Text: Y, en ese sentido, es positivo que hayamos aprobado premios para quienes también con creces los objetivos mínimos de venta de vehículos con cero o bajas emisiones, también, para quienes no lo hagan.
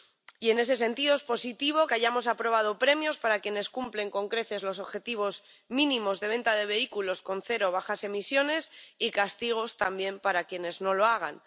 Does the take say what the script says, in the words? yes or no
no